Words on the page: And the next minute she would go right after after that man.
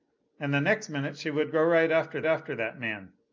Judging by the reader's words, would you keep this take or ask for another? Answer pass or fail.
pass